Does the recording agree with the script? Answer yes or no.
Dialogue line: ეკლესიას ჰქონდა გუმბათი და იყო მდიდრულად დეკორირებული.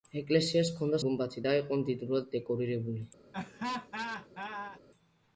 yes